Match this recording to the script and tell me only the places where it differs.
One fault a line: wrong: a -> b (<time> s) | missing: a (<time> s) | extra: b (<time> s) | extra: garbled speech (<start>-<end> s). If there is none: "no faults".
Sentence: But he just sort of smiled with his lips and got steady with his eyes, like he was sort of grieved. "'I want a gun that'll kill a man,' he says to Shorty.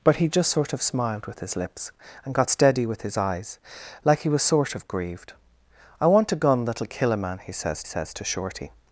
extra: says (7.8 s)